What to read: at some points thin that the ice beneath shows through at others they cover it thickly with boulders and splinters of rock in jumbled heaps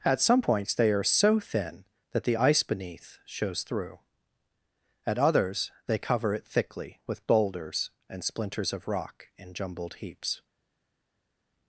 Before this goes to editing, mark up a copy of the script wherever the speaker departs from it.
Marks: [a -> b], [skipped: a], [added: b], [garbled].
at some points [added: they are so] thin that the ice beneath shows through at others they cover it thickly with boulders and splinters of rock in jumbled heaps